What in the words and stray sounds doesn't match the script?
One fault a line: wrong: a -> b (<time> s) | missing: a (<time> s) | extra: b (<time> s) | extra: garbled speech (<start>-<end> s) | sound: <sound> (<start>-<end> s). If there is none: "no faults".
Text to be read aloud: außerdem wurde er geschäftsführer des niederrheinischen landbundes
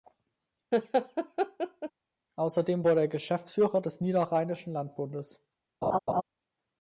sound: laugh (0.7-1.9 s)
sound: laugh (5.8-6.2 s)